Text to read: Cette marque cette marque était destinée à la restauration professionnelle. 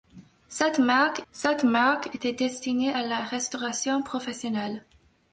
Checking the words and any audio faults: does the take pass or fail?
pass